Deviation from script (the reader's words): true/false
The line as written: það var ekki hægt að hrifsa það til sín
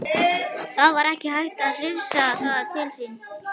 false